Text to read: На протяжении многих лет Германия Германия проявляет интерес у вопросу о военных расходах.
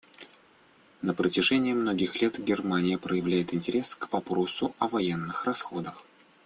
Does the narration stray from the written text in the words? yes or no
yes